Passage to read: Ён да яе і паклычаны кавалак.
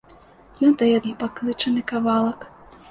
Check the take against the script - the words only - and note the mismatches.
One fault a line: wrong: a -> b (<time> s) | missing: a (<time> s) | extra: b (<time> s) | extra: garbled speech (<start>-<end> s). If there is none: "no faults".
no faults